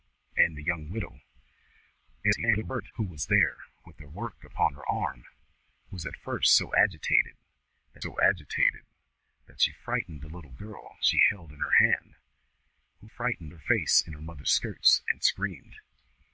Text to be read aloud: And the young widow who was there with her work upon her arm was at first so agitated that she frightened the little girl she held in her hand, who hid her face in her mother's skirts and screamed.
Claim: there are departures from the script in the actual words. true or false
true